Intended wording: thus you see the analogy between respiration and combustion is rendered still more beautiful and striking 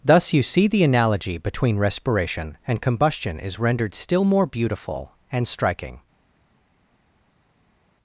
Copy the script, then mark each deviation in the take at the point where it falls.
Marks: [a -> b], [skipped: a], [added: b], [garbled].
thus you see the analogy between respiration and combustion is rendered still more beautiful and striking